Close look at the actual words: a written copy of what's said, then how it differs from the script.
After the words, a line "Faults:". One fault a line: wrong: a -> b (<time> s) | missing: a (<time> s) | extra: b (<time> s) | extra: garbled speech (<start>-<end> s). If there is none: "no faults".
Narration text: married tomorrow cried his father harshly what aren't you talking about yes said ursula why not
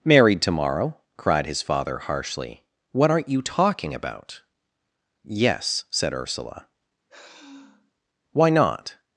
married tomorrow cried his father harshly what aren't you talking about yes said ursula why not
Faults:
no faults